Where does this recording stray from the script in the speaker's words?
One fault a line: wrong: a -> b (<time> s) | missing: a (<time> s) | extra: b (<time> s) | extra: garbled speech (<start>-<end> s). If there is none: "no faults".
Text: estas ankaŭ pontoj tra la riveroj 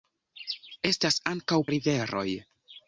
missing: pontoj tra la (1.6 s)